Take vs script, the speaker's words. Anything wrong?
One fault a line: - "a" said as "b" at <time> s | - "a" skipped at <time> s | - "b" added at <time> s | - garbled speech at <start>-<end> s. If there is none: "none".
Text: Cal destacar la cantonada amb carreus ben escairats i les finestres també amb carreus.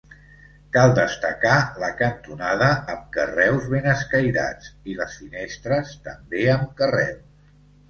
none